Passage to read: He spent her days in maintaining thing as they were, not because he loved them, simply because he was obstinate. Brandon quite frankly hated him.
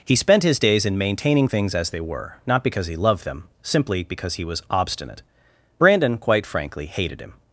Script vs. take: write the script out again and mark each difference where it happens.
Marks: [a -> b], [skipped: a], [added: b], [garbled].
He spent [her -> his] days in maintaining [thing -> things] as they were, not because he loved them, simply because he was obstinate. Brandon quite frankly hated him.